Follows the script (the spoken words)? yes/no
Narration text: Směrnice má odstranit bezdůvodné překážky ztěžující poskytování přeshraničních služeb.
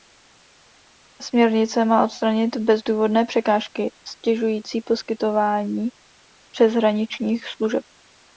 yes